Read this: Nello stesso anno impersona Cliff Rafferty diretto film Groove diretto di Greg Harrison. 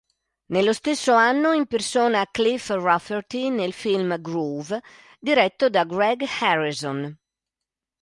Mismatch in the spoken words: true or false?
true